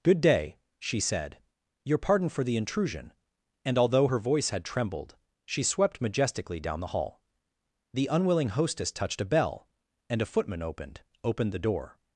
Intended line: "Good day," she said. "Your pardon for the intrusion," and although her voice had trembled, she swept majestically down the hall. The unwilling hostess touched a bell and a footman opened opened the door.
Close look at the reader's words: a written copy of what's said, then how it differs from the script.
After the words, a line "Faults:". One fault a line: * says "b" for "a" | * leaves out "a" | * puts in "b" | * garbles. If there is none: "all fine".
"Good day," she said. "Your pardon for the intrusion," and although her voice had trembled, she swept majestically down the hall. The unwilling hostess touched a bell and a footman opened opened the door.
Faults:
all fine